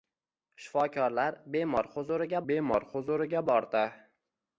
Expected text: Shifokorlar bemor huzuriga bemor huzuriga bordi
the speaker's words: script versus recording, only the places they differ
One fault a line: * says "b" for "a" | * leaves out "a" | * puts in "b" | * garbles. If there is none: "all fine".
all fine